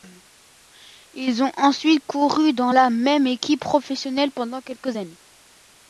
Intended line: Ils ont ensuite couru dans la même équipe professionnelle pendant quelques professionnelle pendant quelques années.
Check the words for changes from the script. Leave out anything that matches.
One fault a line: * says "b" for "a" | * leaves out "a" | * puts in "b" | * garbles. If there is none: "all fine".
* leaves out "professionnelle pendant quelques"